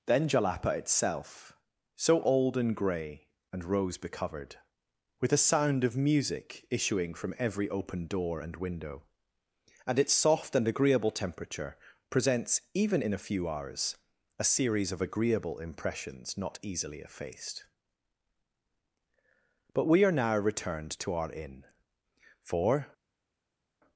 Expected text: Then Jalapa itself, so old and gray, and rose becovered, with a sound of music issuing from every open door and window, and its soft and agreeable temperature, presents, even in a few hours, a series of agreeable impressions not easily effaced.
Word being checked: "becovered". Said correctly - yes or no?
yes